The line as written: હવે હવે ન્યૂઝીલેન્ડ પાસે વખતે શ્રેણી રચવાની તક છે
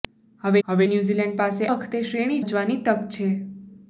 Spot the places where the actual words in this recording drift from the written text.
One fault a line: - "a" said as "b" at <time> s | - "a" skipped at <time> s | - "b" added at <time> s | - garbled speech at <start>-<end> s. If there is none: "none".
none